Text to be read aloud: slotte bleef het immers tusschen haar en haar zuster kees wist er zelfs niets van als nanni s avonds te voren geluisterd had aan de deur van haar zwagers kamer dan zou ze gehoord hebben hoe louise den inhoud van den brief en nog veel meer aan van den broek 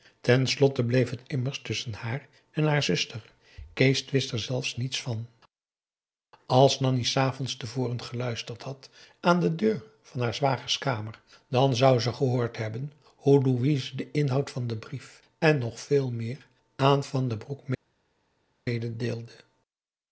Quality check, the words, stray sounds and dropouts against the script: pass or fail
pass